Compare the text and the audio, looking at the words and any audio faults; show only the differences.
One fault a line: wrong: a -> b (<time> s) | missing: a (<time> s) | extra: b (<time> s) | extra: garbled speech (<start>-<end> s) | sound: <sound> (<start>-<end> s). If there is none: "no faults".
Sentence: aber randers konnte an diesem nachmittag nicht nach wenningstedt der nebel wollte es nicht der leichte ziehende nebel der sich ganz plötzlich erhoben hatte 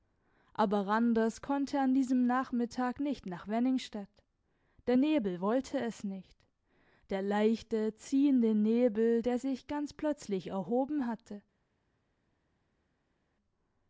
no faults